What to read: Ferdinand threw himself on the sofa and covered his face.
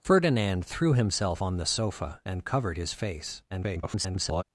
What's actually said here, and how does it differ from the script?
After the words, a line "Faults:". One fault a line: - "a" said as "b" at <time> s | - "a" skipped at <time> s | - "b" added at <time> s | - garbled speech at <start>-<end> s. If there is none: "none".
Ferdinand threw himself on the sofa and covered his face. [garbled]
Faults:
- garbled speech at 3.5-4.4 s